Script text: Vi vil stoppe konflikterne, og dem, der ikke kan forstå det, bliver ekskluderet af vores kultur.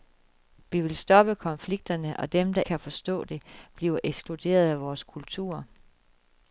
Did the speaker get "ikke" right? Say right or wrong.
wrong